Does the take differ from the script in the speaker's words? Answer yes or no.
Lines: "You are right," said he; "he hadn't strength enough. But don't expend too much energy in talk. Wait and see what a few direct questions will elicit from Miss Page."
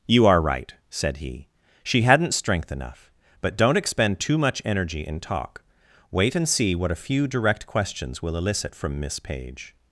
yes